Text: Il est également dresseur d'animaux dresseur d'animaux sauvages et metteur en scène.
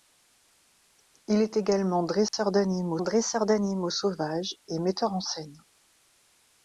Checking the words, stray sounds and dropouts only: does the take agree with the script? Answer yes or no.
no